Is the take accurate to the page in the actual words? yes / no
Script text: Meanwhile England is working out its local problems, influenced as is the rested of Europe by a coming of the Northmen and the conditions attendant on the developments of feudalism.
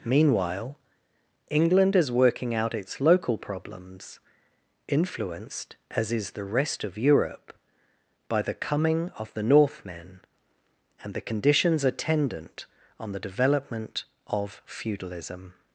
no